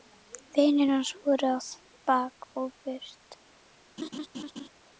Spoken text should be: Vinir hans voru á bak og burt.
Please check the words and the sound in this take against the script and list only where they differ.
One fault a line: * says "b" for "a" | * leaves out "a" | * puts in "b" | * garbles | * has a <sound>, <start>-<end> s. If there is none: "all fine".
* has a laugh, 4.0-4.7 s